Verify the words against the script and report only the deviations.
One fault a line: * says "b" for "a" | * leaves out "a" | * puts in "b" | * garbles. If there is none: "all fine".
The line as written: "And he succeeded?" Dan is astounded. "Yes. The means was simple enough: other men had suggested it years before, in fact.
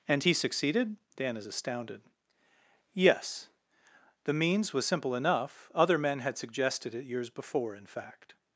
all fine